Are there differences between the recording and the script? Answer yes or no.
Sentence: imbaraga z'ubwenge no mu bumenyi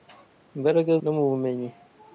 yes